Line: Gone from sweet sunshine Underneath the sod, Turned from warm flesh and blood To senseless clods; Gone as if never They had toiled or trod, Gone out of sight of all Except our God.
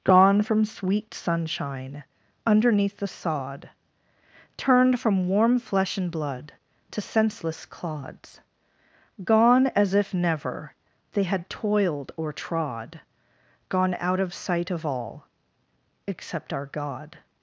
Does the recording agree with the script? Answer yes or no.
yes